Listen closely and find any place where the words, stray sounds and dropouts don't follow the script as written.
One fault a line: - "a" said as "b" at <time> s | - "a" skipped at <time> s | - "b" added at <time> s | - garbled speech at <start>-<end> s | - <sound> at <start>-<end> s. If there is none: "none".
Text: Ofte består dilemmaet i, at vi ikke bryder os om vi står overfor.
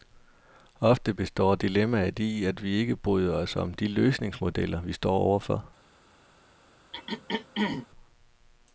- "de løsningsmodeller" added at 3.7 s
- throat clearing at 6.9-7.9 s